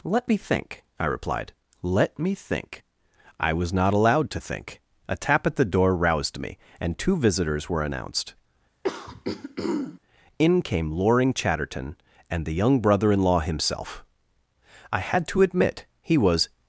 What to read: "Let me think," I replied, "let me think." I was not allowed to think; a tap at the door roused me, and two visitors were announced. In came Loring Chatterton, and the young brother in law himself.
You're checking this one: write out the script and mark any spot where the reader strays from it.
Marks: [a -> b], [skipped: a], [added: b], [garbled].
"Let me think," I replied, "let me think." I was not allowed to think; a tap at the door roused me, and two visitors were announced. In came Loring Chatterton, and the young brother in law himself. [added: I had to admit he was]